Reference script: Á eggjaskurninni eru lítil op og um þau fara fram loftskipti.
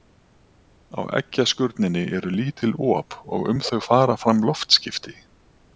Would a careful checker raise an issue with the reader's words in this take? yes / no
no